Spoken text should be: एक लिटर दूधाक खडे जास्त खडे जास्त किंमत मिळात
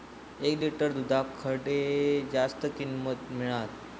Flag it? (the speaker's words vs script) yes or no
yes